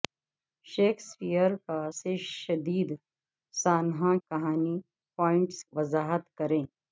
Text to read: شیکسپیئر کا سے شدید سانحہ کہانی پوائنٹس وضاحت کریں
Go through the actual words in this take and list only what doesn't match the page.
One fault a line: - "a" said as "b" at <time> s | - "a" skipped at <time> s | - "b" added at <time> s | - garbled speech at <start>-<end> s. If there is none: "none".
none